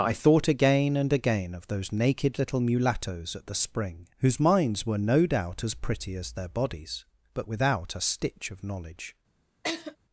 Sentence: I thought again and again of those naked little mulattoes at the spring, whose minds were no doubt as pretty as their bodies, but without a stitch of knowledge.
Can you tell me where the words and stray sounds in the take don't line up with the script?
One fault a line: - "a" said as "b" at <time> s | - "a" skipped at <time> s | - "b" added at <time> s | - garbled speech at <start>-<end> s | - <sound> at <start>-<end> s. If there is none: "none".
- laugh at 9.6-10.0 s